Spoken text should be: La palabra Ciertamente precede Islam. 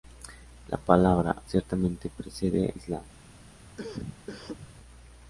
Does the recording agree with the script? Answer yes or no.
yes